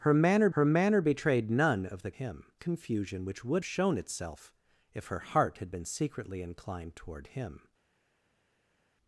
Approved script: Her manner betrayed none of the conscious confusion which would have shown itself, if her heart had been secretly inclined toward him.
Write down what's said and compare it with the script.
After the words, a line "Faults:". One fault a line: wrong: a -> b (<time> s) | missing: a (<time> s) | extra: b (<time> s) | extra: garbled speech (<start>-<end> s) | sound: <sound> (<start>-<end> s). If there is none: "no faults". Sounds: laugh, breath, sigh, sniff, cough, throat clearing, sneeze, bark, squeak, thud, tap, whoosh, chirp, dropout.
Her manner her manner betrayed none of the him confusion which would shown itself, if her heart had been secretly inclined toward him.
Faults:
extra: her manner (0.5 s)
wrong: conscious -> him (2.1 s)
missing: have (3.6 s)